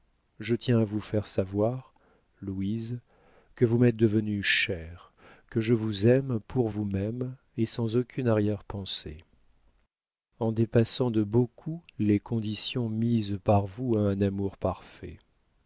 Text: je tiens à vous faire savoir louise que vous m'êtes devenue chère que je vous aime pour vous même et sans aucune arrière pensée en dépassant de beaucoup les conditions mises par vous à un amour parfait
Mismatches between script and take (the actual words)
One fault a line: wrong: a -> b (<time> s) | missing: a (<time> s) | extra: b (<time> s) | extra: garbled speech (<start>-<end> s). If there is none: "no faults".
no faults